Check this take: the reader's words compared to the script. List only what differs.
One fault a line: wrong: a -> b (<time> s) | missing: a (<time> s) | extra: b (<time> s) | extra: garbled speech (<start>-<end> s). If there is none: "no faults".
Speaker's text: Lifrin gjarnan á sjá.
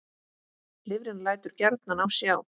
extra: lætur (1.3 s)